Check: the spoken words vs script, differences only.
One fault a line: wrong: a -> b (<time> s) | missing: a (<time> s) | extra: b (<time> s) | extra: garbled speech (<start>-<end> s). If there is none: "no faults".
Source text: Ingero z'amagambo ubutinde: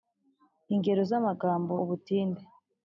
no faults